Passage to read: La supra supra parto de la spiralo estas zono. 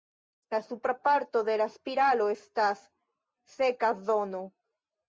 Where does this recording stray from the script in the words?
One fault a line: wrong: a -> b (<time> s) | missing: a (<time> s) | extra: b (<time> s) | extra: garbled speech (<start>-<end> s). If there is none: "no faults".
missing: supra (0.9 s)
extra: seka (3.6 s)